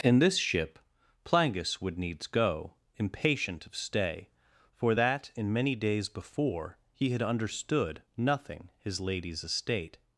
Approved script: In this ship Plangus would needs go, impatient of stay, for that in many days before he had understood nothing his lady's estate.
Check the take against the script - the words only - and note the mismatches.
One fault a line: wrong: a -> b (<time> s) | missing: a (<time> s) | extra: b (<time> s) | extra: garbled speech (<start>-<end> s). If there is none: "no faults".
no faults